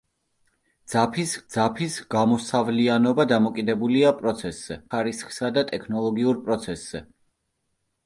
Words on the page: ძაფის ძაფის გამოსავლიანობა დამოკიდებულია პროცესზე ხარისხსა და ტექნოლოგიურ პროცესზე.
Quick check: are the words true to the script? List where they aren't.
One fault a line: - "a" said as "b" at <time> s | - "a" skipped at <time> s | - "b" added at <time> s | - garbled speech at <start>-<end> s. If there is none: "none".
none